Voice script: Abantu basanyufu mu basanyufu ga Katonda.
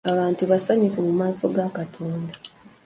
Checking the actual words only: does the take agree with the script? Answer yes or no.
no